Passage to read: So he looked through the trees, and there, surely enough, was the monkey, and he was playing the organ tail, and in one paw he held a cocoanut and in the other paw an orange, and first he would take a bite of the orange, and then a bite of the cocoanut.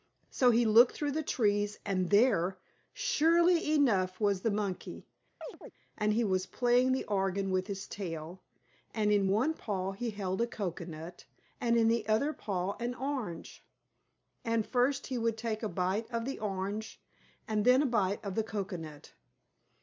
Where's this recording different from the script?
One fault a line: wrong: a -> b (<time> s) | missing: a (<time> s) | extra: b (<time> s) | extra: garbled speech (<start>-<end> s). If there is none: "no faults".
extra: with his (7.5 s)